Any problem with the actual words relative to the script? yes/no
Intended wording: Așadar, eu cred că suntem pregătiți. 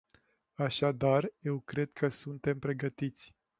no